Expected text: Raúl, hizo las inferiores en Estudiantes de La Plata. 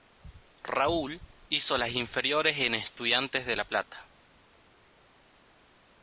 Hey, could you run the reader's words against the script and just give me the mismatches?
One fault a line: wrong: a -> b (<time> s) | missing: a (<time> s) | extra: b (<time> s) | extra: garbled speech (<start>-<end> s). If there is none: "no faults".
no faults